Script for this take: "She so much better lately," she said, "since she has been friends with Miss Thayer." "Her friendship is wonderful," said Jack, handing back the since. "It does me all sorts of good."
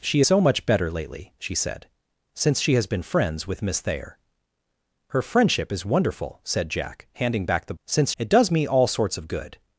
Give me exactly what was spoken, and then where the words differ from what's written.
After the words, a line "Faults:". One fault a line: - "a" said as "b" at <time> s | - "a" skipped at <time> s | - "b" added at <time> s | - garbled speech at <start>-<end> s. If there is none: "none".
"She so much better lately," she said, "since she has been friends with Miss Thayer." "Her friendship is wonderful," said Jack, handing back the since. "It does me all sorts of good."
Faults:
none